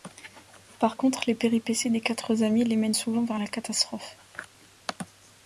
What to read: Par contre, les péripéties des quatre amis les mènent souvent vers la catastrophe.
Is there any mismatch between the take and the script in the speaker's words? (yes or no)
no